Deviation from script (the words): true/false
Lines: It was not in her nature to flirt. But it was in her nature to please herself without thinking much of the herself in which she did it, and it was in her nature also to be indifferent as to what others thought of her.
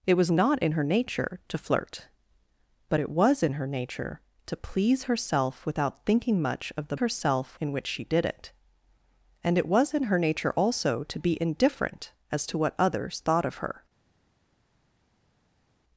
false